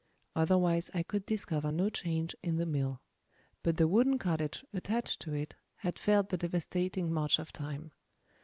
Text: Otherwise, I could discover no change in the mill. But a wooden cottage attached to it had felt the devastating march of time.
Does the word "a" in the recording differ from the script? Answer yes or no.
yes